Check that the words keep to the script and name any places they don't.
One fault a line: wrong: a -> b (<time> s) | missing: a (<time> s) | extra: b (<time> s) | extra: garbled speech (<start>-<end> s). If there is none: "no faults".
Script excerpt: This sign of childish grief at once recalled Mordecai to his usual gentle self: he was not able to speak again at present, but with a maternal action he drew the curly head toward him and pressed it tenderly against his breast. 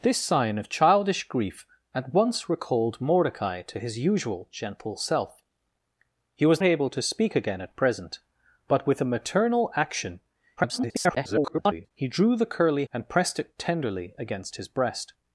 missing: not (6.6 s)
extra: garbled speech (10.6-11.9 s)
missing: head toward him (12.9 s)